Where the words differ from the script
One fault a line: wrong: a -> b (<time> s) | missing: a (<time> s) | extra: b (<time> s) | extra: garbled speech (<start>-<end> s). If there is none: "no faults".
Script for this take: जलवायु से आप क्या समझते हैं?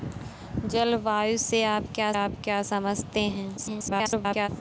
extra: आप क्या (2.1 s)
extra: garbled speech (3.6-4.5 s)